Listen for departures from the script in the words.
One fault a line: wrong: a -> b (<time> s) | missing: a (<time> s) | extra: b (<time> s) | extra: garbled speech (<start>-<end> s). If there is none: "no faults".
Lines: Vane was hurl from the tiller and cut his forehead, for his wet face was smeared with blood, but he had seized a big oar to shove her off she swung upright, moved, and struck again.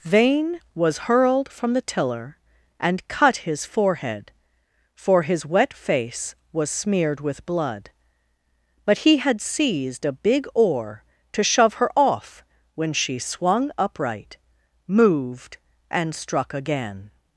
wrong: hurl -> hurled (1.0 s)
extra: when (12.8 s)